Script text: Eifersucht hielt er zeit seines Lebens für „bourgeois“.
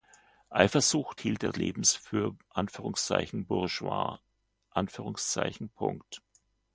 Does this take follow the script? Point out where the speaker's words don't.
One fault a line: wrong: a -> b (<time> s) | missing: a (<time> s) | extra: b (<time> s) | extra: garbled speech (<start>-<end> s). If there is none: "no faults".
missing: zeit seines (1.5 s)